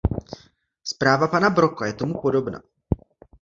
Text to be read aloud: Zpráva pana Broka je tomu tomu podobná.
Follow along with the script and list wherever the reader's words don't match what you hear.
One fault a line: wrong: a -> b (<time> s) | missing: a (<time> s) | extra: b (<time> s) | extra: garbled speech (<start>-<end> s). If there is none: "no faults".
missing: tomu (2.2 s)